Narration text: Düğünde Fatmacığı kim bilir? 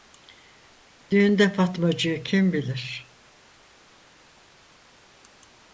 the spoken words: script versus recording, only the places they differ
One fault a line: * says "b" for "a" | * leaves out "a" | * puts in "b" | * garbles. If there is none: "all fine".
all fine